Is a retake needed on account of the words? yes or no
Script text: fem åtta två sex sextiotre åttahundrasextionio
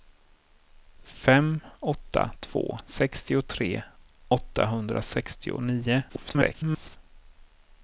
yes